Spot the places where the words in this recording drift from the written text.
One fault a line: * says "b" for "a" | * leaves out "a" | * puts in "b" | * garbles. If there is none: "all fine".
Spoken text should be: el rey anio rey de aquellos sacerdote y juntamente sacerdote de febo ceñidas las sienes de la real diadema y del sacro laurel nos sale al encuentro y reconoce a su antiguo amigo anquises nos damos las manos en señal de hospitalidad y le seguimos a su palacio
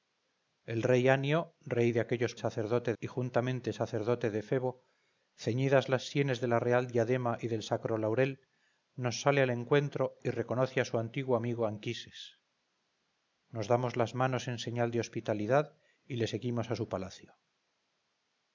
all fine